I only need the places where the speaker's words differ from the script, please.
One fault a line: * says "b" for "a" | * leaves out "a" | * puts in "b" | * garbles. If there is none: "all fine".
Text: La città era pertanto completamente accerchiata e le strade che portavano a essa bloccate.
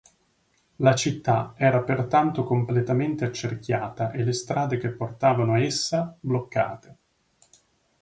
all fine